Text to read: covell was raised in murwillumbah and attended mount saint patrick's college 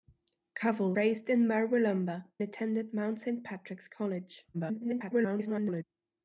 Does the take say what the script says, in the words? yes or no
no